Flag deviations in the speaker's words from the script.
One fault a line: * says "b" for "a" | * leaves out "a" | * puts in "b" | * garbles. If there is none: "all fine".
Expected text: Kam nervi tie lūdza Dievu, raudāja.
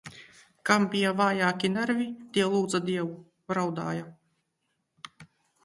* puts in "bija vājāki"